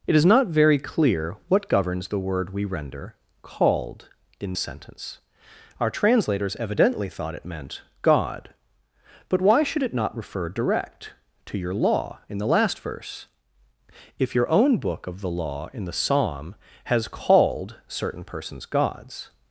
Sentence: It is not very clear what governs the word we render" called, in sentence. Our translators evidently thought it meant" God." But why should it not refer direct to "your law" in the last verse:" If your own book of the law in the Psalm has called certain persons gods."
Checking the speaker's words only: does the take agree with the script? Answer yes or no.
yes